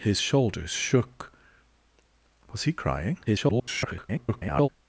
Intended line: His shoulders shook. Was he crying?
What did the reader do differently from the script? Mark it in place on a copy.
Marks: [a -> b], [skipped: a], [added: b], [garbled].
His shoulders shook. Was he crying? [garbled]